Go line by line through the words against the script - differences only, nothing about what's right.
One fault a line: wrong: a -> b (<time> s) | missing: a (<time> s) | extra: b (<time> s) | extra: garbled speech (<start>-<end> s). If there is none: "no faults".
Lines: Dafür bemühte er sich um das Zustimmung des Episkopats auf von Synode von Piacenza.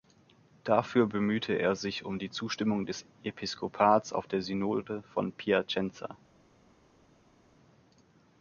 wrong: das -> die (2.2 s)
wrong: von -> der (4.2 s)